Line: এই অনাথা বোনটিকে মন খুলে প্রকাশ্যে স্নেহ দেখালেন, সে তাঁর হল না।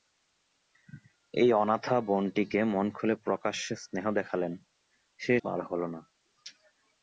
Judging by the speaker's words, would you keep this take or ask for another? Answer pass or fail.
pass